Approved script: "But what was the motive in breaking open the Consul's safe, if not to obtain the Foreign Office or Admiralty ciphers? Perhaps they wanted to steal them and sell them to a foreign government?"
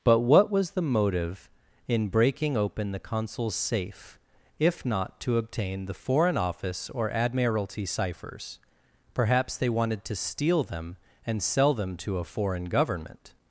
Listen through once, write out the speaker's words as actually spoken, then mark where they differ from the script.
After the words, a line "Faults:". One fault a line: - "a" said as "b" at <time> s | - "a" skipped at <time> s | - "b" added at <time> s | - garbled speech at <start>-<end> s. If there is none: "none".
"But what was the motive in breaking open the Consul's safe, if not to obtain the Foreign Office or Admiralty ciphers? Perhaps they wanted to steal them and sell them to a foreign government?"
Faults:
none